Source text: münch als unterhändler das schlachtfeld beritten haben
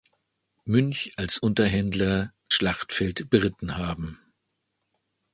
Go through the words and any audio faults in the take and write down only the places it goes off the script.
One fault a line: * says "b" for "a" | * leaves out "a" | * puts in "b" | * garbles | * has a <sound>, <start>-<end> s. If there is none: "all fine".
* leaves out "das"